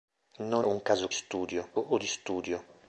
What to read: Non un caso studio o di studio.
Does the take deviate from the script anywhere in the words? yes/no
no